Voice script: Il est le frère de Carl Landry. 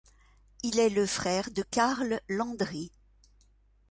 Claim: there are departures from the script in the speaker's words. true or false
false